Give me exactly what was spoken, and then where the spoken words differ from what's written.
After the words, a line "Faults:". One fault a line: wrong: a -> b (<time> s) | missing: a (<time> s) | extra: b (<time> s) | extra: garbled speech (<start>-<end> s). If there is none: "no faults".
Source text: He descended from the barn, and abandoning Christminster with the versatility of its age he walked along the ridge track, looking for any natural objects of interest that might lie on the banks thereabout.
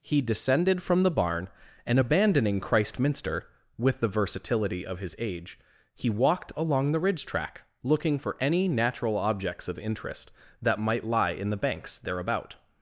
He descended from the barn, and abandoning Christminster with the versatility of his age he walked along the ridge track, looking for any natural objects of interest that might lie in the banks thereabout.
Faults:
wrong: its -> his (5.0 s)
wrong: on -> in (11.3 s)